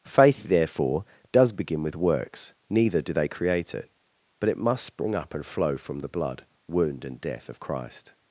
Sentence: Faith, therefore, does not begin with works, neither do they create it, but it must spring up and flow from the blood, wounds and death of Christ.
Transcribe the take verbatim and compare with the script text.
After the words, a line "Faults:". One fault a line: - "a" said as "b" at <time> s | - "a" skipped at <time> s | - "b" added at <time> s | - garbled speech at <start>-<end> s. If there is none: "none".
Faith, therefore, does begin with works, neither do they create it, but it must spring up and flow from the blood, wound and death of Christ.
Faults:
- "not" skipped at 1.5 s
- "wounds" said as "wound" at 6.7 s